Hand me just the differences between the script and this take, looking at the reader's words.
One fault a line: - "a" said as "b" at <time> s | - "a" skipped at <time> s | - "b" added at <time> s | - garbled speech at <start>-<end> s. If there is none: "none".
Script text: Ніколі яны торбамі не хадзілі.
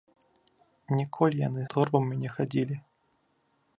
none